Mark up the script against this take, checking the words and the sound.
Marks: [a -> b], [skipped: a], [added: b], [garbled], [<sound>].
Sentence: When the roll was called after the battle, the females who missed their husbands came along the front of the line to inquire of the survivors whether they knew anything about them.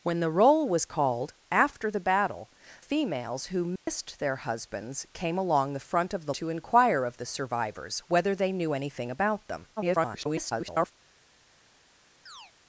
When the roll was called after the battle, [skipped: the] females who missed [dropout] their husbands came along the front of the [skipped: line] to inquire of the survivors whether they knew anything about them. [garbled] [chirp]